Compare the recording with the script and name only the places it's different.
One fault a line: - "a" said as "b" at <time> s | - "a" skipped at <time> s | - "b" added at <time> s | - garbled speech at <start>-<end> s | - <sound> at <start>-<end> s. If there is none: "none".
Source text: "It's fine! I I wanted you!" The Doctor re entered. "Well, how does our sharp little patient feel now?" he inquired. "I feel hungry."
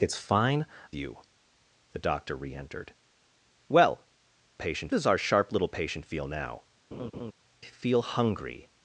- "I I wanted" skipped at 0.7 s
- "how" said as "patient" at 4.6 s
- "he inquired I" skipped at 6.6 s
- laugh at 6.9-7.3 s